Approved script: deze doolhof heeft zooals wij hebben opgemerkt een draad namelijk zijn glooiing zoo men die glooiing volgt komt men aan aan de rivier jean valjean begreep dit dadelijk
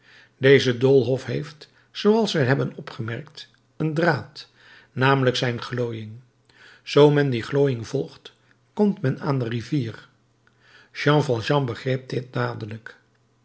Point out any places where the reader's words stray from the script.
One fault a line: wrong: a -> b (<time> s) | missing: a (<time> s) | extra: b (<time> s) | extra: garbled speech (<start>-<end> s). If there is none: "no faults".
missing: aan (9.4 s)